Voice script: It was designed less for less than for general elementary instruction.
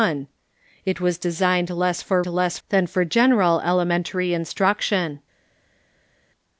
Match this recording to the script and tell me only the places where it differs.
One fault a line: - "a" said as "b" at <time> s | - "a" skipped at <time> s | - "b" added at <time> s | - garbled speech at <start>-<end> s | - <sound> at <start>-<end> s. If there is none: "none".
none